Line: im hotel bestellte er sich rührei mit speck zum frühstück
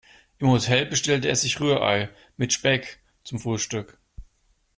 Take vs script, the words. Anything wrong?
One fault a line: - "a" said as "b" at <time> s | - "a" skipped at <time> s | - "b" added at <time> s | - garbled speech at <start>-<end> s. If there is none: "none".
none